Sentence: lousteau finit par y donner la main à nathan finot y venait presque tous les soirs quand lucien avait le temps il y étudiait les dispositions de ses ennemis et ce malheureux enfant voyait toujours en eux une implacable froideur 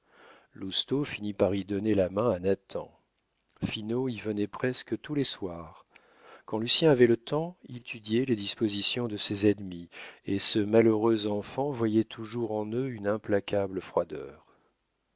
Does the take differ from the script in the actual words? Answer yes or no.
yes